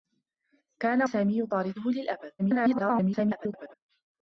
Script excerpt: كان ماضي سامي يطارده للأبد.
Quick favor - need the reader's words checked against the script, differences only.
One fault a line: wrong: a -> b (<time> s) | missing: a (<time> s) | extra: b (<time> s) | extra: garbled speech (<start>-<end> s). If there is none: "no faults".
missing: ماضي (1.1 s)
extra: garbled speech (2.4-3.7 s)